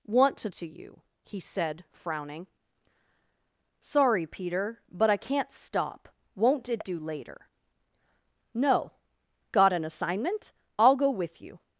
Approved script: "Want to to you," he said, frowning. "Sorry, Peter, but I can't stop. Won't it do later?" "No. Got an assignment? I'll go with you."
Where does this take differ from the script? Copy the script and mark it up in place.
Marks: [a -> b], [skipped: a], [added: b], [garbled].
"Want to to you," he said, frowning. "Sorry, Peter, but I can't stop. Won't it do later?" "No. Got an assignment? I'll go with you."